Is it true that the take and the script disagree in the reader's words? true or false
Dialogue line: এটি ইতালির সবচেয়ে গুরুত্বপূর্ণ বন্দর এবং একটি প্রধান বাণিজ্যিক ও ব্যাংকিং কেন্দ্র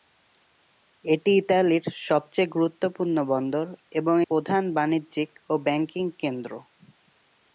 true